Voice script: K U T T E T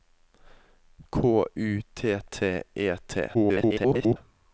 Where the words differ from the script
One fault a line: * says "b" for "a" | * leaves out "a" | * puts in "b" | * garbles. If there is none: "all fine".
* garbles